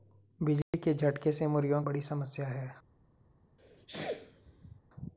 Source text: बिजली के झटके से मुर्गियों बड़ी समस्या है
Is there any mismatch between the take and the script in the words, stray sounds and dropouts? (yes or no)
yes